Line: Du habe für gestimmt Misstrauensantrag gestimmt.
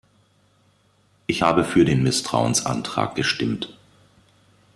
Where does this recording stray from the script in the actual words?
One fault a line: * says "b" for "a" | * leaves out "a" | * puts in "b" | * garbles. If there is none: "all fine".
* says "Ich" for "Du"
* says "den" for "gestimmt"